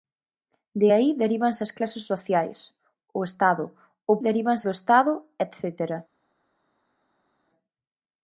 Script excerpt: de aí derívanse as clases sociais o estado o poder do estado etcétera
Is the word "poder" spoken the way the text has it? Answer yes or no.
no